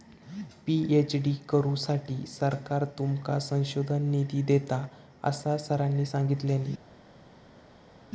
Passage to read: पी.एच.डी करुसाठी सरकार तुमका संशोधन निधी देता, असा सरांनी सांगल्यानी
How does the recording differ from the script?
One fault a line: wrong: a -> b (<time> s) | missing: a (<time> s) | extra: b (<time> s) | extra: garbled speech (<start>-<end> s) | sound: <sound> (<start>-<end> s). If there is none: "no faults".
no faults